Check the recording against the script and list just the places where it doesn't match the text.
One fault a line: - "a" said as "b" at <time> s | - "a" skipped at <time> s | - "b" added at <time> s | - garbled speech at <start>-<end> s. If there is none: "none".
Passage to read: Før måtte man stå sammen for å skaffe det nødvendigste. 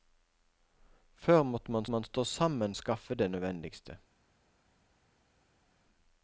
- "man" added at 1.9 s
- "for" skipped at 2.7 s